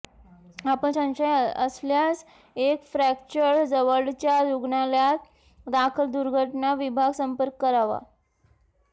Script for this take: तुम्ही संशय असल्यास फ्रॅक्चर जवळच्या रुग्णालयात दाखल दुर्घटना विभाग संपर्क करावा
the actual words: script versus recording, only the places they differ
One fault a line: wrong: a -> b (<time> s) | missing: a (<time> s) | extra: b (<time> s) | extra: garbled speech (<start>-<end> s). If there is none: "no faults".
wrong: तुम्ही -> आपण (0.7 s)
extra: एक (2.6 s)